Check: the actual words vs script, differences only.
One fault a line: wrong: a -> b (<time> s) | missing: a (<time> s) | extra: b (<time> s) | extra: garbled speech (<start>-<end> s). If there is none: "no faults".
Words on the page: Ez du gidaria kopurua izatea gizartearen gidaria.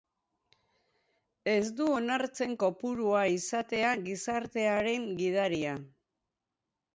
wrong: gidaria -> onartzen (1.9 s)